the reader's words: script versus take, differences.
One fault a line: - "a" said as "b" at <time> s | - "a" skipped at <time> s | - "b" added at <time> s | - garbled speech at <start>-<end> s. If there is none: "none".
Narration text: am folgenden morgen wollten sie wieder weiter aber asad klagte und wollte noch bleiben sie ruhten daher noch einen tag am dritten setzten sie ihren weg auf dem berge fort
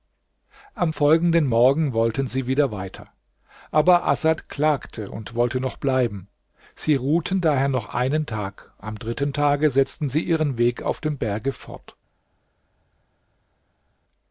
- "tage" added at 9.3 s